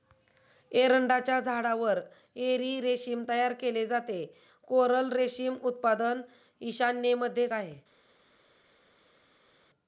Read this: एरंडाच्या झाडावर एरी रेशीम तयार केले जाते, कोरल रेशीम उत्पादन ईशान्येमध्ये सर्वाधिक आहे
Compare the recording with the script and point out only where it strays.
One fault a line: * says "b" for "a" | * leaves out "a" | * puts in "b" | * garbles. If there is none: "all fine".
* leaves out "सर्वाधिक"